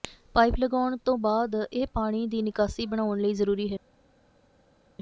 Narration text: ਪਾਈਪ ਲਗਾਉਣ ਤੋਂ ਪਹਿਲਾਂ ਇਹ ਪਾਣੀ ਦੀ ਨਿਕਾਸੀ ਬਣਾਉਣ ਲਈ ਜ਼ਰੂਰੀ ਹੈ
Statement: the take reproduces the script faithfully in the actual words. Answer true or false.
false